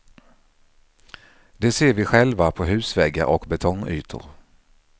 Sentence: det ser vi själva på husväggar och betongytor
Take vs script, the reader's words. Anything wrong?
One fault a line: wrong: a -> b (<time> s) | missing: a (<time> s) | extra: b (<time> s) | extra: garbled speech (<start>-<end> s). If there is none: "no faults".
no faults